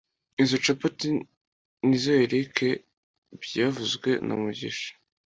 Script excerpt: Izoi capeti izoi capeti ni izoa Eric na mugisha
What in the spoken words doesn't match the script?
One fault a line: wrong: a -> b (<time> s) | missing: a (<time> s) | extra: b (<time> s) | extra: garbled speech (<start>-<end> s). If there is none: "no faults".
missing: izoi capeti (1.1 s)
extra: byavuzwe (3.4 s)